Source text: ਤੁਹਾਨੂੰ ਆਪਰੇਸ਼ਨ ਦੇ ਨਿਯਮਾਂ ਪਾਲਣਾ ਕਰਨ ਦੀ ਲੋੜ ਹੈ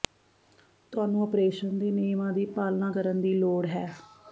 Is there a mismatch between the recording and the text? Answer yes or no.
yes